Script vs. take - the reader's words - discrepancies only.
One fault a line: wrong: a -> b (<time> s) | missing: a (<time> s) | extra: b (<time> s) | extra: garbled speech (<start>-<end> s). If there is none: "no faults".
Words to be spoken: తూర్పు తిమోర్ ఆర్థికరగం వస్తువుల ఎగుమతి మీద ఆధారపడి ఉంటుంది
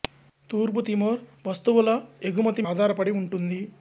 missing: ఆర్థికరగం (1.2 s)
missing: మీద (2.6 s)